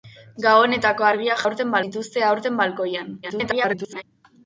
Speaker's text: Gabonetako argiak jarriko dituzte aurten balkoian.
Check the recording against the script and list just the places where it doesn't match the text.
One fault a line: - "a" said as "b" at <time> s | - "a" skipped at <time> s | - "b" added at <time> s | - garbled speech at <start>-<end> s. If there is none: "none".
- "jarriko" said as "aurten" at 1.5 s
- garbled speech at 3.2-4.0 s